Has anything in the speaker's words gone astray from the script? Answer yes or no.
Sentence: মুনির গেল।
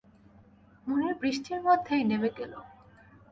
yes